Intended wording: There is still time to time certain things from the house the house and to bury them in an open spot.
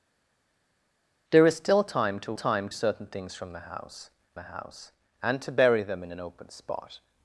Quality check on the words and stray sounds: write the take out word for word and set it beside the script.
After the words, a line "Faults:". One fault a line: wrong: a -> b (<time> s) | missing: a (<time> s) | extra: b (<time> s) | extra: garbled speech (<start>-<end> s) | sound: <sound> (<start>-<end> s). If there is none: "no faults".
There is still time to time certain things from the house the house and to bury them in an open spot.
Faults:
no faults